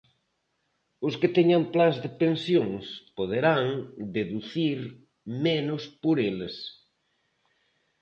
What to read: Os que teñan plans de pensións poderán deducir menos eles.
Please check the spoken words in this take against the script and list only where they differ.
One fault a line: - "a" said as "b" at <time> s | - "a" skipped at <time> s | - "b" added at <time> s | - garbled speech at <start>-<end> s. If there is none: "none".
- "por" added at 6.0 s